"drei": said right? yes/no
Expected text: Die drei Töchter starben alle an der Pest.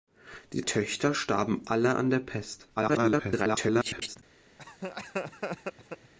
no